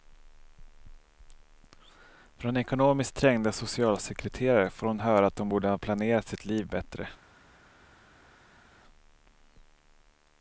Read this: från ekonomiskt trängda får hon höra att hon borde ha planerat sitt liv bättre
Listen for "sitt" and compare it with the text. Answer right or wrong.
right